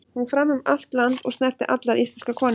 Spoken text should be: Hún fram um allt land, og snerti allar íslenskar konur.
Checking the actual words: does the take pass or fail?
pass